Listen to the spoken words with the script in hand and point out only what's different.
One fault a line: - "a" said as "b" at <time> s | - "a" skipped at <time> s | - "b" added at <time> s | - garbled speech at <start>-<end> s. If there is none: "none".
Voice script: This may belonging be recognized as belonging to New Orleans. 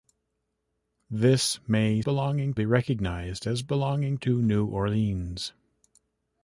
none